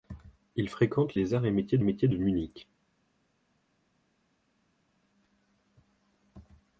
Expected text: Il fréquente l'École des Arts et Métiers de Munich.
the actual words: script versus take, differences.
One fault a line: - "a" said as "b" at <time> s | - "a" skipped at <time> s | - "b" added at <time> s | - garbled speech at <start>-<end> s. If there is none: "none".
- "l'École" skipped at 1.1 s
- "Métiers" added at 1.8 s